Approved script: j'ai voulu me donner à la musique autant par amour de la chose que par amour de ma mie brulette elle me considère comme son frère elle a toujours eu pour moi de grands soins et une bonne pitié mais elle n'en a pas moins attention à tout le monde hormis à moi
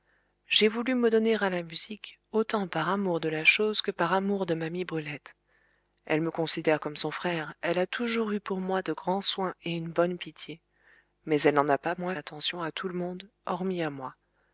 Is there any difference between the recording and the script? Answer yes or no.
no